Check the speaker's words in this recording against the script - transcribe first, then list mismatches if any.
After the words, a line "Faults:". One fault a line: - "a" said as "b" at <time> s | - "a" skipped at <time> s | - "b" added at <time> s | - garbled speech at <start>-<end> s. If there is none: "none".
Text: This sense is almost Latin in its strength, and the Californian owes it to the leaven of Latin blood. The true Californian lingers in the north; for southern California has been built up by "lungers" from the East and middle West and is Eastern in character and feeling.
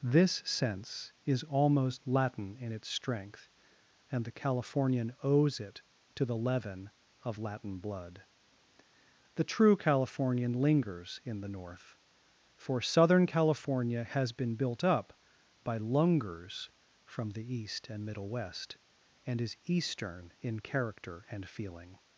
This sense is almost Latin in its strength, and the Californian owes it to the leaven of Latin blood. The true Californian lingers in the north; for southern California has been built up by "lungers" from the East and middle West and is Eastern in character and feeling.
Faults:
none